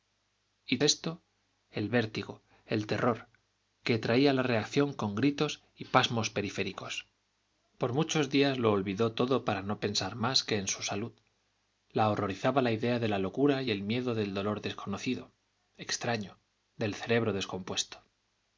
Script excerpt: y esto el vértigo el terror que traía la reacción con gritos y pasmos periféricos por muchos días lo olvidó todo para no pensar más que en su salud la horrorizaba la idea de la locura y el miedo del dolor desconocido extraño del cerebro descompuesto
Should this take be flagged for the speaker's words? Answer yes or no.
no